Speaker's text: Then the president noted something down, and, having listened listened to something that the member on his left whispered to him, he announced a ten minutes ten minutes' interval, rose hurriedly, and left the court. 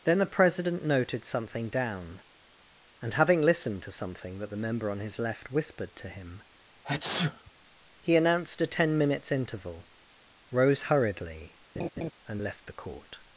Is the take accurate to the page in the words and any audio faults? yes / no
no